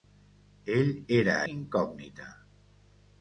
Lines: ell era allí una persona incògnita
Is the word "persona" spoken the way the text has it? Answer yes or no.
no